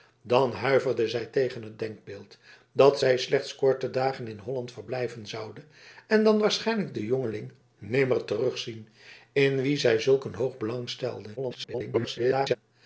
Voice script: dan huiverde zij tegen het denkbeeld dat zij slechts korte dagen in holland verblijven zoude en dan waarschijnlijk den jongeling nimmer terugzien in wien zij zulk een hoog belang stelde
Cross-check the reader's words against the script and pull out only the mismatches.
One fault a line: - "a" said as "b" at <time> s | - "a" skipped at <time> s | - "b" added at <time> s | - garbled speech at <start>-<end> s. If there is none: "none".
- garbled speech at 11.4-12.6 s